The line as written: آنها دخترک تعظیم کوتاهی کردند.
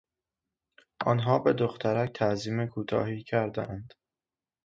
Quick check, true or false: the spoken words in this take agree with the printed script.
false